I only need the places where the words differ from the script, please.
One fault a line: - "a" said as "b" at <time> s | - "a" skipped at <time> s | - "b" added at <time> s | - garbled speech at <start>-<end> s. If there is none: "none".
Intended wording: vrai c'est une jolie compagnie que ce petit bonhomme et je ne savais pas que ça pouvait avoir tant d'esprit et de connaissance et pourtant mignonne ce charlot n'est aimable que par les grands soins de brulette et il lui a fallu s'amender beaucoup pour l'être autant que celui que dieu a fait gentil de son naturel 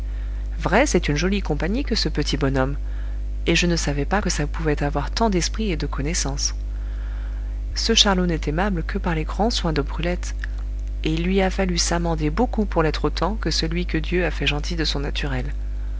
- "et pourtant mignonne" skipped at 6.5 s